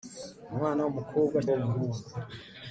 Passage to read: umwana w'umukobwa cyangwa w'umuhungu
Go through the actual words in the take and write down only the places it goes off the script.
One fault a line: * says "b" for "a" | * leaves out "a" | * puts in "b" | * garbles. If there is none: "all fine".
* leaves out "cyangwa"